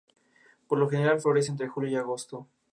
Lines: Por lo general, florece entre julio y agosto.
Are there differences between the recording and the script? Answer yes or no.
no